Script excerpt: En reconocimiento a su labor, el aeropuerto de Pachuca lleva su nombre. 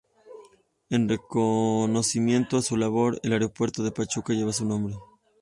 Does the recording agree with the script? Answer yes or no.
yes